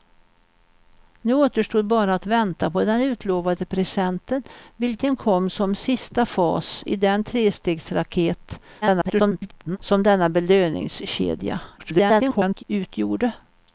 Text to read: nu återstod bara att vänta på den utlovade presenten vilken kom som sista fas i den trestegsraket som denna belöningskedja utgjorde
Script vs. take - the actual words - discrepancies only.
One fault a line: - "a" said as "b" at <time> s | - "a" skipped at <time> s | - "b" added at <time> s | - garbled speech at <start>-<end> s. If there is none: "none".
- garbled speech at 8.8-9.8 s
- garbled speech at 11.8-12.6 s